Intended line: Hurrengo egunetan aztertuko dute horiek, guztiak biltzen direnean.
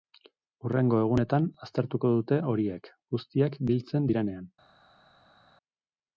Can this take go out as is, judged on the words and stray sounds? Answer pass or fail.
pass